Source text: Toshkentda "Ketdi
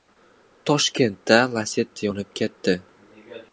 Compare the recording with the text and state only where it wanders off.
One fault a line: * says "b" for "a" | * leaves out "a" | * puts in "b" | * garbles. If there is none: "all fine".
* puts in "Lacetti yonib"